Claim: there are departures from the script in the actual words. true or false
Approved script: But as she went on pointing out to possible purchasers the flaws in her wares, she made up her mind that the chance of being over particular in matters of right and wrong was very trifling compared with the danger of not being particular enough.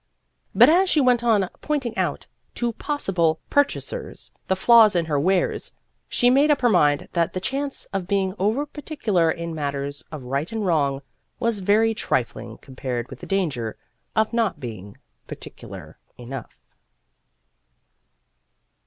false